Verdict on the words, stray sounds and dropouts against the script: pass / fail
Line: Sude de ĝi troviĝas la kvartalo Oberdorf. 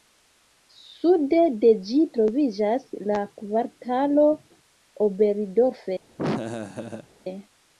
fail